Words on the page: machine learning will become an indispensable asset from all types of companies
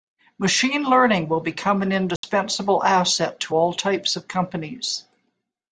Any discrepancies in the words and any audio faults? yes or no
yes